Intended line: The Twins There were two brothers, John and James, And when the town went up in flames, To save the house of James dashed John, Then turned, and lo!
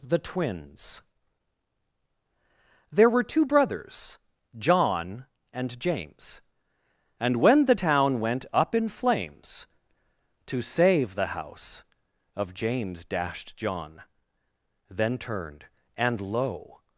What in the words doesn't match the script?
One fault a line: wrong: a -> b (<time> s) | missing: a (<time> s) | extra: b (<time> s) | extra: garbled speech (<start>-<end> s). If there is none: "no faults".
no faults